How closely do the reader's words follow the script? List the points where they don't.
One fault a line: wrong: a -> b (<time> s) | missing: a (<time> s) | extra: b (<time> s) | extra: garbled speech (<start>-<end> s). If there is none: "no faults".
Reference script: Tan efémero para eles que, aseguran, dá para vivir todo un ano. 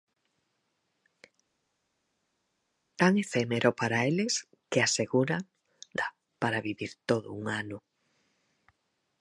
no faults